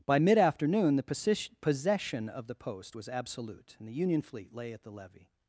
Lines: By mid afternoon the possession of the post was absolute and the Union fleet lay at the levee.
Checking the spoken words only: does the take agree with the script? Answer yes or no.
yes